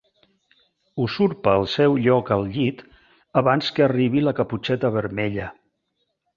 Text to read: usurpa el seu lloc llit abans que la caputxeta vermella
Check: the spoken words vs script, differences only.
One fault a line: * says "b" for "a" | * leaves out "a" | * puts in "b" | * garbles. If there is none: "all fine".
* puts in "al"
* puts in "arribi"